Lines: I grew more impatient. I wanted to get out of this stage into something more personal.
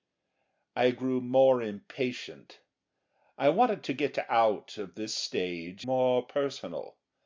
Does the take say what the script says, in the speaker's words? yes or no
no